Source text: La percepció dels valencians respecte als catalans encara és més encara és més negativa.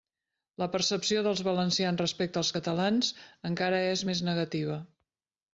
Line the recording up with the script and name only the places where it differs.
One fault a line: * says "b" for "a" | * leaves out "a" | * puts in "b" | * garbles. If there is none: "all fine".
* leaves out "encara és més"